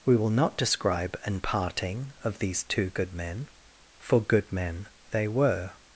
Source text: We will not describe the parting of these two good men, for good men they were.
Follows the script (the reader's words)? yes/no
no